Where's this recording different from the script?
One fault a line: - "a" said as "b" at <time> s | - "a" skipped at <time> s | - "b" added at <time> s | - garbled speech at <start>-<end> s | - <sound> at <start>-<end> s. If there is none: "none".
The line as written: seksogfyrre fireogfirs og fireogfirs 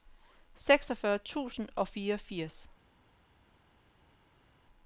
- "fireogfirs" said as "tusind" at 1.2 s